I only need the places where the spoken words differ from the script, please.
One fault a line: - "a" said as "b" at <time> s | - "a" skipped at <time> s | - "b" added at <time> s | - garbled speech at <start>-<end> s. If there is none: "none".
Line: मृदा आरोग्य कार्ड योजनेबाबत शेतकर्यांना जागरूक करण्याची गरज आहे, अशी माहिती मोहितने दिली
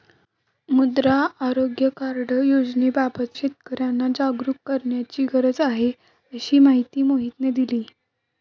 none